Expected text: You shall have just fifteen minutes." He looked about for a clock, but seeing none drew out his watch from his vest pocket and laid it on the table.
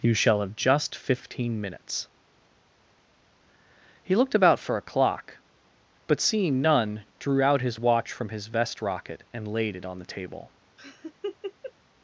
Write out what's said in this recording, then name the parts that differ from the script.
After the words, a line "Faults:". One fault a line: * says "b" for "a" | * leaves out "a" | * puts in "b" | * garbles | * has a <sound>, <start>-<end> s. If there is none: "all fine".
You shall have just fifteen minutes." He looked about for a clock, but seeing none drew out his watch from his vest rocket and laid it on the table.
Faults:
* says "rocket" for "pocket"
* has a laugh, 10.8-11.7 s